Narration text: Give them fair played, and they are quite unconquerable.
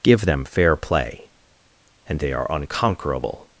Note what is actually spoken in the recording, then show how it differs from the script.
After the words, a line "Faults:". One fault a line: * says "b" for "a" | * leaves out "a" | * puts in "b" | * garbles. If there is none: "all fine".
Give them fair play, and they are unconquerable.
Faults:
* says "play" for "played"
* leaves out "quite"